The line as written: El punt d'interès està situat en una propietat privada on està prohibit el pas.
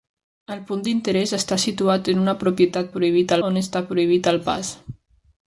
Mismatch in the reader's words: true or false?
true